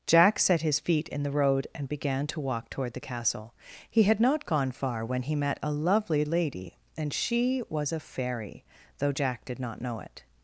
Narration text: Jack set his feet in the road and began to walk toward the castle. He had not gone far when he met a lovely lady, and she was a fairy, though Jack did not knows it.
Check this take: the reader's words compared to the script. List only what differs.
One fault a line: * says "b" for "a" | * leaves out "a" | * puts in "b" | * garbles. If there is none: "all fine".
* says "know" for "knows"